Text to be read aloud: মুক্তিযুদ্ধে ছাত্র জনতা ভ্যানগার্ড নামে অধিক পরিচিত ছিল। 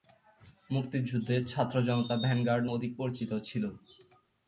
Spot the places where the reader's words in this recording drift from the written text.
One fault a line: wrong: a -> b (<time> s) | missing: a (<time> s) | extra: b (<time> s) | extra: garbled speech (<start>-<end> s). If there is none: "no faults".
missing: নামে (2.6 s)